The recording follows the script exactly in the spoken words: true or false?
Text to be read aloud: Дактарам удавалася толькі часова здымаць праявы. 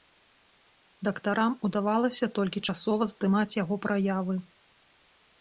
false